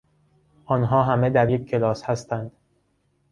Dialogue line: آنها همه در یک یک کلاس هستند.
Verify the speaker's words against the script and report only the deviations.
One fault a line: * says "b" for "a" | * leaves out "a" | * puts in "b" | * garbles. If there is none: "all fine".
* leaves out "یک"